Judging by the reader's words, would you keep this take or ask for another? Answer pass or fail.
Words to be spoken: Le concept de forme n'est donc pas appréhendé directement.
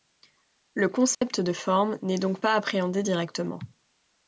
pass